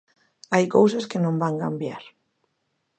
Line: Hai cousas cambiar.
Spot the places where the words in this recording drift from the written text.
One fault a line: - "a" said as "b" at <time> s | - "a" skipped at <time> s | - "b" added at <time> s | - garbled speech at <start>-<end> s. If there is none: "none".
- "que non van" added at 1.1 s